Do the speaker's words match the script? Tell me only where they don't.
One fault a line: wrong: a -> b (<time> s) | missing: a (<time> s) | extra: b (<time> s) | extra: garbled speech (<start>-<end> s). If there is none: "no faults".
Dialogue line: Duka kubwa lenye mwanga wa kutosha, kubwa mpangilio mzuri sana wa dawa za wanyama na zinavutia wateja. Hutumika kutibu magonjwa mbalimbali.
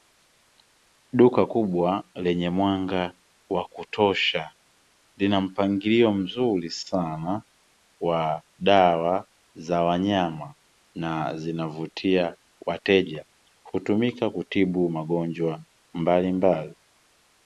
wrong: kubwa -> lina (5.2 s)